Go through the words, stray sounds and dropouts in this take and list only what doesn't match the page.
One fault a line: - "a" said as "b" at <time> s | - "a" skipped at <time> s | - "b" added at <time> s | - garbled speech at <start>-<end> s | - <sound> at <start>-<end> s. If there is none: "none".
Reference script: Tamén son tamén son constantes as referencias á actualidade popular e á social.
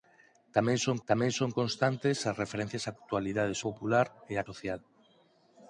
none